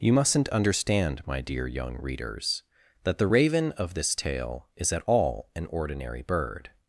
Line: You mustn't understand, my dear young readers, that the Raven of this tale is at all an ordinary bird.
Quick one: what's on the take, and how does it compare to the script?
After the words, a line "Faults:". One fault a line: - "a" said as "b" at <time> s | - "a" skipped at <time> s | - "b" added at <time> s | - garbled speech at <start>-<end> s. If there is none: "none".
You mustn't understand, my dear young readers, that the Raven of this tale is at all an ordinary bird.
Faults:
none